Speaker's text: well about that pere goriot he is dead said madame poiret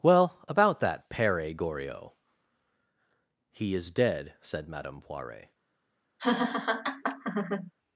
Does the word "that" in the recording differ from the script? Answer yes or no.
no